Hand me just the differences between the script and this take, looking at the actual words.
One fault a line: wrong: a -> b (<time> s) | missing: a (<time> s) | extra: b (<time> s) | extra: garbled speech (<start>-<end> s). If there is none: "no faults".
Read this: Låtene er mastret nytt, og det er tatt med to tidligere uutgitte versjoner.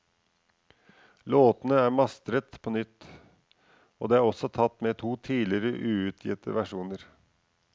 extra: på (2.6 s)
extra: også (4.2 s)